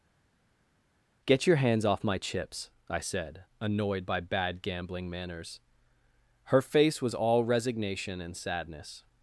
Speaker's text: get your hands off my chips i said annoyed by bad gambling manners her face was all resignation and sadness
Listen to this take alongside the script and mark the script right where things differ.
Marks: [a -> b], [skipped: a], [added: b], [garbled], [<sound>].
get your hands off my chips i said annoyed by bad gambling manners her face was all resignation and sadness